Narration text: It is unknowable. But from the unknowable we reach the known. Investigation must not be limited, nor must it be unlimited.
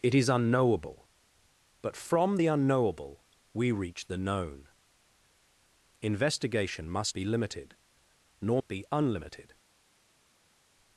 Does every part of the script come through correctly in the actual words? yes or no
no